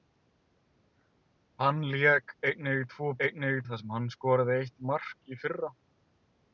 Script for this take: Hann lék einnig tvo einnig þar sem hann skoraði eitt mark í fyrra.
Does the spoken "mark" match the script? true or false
true